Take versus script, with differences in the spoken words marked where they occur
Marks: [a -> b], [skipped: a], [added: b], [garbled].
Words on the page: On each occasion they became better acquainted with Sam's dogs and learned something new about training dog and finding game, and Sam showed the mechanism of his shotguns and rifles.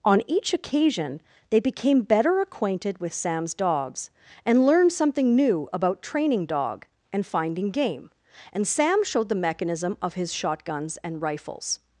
On each occasion they became better acquainted with Sam's dogs and learned something new about training dog and finding game, and Sam showed the mechanism of his shotguns and rifles.